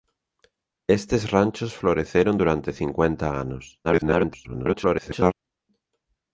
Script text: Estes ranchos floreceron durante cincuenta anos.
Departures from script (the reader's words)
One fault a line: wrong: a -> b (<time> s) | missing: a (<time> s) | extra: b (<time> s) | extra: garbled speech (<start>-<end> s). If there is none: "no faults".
extra: garbled speech (3.8-5.3 s)